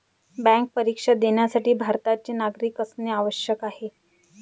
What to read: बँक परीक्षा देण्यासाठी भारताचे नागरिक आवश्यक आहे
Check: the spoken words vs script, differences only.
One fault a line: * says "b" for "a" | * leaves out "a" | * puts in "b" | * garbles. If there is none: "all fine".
* puts in "असणे"